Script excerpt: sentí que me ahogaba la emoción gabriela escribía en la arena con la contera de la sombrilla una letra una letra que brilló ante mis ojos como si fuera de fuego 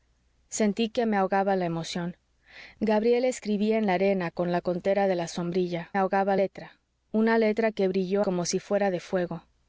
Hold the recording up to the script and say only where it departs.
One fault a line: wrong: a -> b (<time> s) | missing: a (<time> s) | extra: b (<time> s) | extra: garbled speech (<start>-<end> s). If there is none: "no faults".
wrong: una -> ahogaba (6.0 s)
missing: ante mis ojos (8.2 s)